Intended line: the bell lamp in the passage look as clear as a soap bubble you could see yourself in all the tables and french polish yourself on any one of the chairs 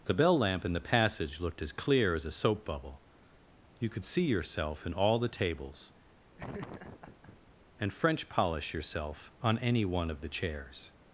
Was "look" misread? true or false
true